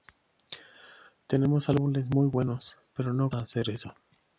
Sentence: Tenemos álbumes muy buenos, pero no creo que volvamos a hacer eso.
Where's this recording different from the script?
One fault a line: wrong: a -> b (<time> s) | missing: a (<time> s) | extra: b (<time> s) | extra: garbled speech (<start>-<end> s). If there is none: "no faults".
missing: creo que volvamos (3.3 s)